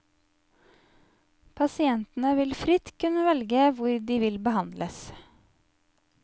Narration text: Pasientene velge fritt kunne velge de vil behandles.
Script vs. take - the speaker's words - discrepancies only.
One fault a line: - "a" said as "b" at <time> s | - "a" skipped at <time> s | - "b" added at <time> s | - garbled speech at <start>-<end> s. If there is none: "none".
- "velge" said as "vil" at 2.4 s
- "hvor" added at 3.8 s